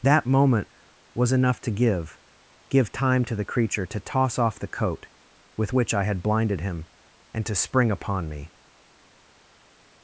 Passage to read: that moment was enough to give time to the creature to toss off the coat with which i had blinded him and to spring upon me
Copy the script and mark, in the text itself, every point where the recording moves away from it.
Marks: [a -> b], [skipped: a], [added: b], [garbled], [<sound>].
that moment was enough to give [added: give] time to the creature to toss off the coat with which i had blinded him and to spring upon me